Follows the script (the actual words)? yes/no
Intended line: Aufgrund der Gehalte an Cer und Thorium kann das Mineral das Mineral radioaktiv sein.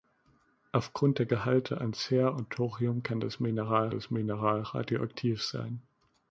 yes